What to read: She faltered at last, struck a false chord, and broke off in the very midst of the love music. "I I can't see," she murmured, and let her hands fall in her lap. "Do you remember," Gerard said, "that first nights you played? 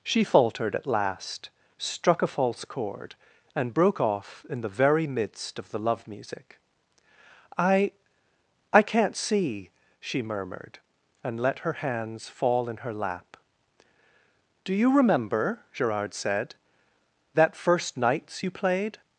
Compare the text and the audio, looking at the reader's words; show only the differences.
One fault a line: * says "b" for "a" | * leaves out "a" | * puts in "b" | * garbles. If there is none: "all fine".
all fine